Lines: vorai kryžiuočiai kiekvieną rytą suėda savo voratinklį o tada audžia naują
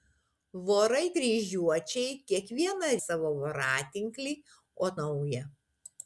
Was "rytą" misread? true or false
true